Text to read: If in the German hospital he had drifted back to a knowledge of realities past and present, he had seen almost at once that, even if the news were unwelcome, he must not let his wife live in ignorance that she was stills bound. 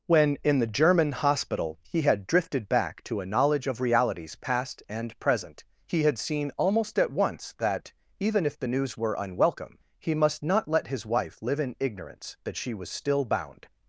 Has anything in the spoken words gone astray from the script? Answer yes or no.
yes